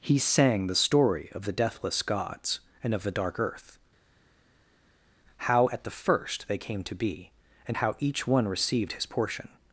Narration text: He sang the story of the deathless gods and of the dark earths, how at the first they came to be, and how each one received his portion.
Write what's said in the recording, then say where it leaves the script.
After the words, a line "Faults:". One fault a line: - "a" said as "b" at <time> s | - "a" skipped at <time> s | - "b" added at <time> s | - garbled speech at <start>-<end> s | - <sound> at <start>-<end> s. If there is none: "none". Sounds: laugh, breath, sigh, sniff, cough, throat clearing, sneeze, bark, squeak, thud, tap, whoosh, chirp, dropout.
He sang the story of the deathless gods and of the dark earth, how at the first they came to be, and how each one received his portion.
Faults:
- "earths" said as "earth" at 3.4 s